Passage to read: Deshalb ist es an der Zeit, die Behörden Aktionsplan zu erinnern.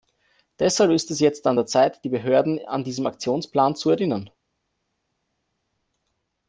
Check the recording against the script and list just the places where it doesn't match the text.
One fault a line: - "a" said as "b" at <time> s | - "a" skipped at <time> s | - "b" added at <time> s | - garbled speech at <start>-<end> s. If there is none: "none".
- "jetzt" added at 1.2 s
- "an diesen" added at 2.7 s